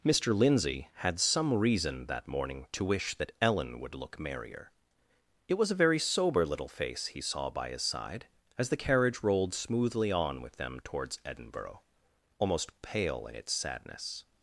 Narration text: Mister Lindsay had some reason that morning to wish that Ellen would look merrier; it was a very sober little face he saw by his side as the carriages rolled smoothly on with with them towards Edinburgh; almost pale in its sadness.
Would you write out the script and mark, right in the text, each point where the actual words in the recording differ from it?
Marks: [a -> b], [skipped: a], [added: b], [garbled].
Mister Lindsay had some reason that morning to wish that Ellen would look merrier; it was a very sober little face he saw by his side as the [carriages -> carriage] rolled smoothly on with [skipped: with] them towards Edinburgh; almost pale in its sadness.